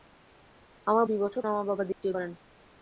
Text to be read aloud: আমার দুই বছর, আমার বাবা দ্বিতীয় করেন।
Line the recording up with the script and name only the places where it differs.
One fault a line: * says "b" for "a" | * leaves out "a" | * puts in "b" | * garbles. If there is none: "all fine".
all fine